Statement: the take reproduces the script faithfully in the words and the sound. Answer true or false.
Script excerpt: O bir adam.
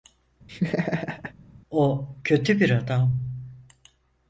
false